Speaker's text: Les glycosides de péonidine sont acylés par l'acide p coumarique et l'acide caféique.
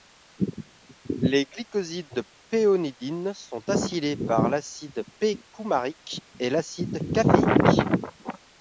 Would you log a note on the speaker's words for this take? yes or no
no